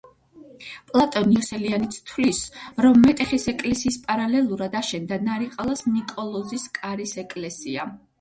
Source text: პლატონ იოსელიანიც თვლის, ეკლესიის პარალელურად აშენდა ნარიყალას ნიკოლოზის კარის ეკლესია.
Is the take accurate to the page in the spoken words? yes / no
no